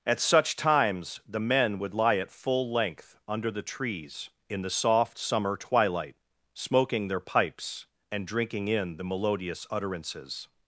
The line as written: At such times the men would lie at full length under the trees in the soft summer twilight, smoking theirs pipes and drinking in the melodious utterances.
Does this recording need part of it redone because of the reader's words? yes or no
yes